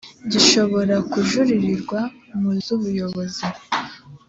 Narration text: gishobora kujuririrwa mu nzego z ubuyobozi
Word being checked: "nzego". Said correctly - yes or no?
no